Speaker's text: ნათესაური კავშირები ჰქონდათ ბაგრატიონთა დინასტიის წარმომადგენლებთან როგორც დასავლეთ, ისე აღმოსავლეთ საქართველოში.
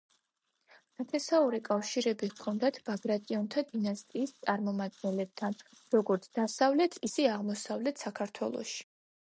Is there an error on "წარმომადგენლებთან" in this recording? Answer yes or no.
no